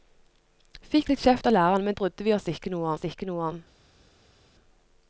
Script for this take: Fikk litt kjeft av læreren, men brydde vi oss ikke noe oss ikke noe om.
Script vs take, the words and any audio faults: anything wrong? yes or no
no